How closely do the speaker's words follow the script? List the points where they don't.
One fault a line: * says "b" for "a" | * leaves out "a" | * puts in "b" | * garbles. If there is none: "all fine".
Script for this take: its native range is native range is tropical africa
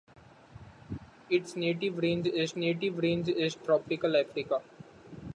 all fine